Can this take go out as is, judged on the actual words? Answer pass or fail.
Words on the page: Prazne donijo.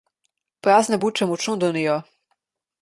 fail